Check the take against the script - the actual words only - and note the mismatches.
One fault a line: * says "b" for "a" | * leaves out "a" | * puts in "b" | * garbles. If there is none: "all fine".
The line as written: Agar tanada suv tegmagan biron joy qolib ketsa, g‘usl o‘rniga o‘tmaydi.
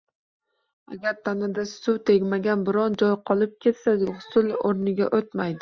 all fine